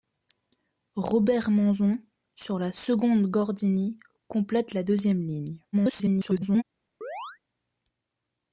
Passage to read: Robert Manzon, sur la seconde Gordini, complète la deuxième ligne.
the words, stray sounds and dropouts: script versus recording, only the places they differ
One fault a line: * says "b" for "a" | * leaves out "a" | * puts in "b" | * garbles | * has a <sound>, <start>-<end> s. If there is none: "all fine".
* garbles
* has a chirp, 7.0-7.4 s